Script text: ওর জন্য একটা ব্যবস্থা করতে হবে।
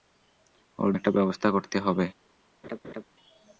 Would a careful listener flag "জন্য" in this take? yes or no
yes